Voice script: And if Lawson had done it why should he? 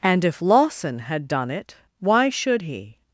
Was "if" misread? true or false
false